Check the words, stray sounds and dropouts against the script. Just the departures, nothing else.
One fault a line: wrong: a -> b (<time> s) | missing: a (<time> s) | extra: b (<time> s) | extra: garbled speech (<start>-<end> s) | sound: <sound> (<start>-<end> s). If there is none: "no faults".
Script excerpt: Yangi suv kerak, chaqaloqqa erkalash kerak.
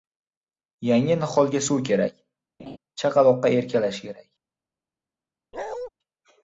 extra: niholga (1.2 s)
sound: laugh (2.6-2.8 s)
sound: bark (5.5-5.9 s)